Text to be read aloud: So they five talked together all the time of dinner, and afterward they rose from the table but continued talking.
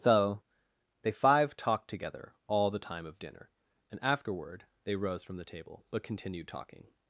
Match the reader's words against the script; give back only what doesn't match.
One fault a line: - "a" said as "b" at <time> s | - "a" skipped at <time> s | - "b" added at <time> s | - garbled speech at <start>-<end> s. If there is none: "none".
none